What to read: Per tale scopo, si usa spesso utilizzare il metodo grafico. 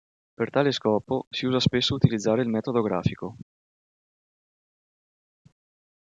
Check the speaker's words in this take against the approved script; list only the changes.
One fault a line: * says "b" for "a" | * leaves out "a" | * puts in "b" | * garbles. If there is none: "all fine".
all fine